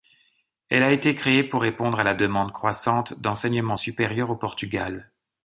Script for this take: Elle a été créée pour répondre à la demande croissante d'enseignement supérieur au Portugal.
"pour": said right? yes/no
yes